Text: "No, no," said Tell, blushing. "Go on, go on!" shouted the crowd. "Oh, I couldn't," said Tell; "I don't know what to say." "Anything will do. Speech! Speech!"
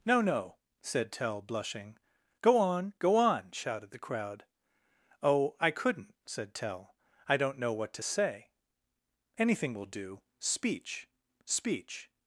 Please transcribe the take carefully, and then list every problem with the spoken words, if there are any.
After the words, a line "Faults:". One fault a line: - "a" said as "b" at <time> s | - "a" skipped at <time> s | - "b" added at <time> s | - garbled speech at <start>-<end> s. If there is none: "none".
"No, no," said Tell, blushing. "Go on, go on!" shouted the crowd. "Oh, I couldn't," said Tell; "I don't know what to say." "Anything will do. Speech! Speech!"
Faults:
none